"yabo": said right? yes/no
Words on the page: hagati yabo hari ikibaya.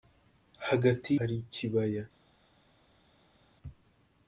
no